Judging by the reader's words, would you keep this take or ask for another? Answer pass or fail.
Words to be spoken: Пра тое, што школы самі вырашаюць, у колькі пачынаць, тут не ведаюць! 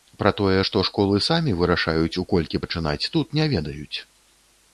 pass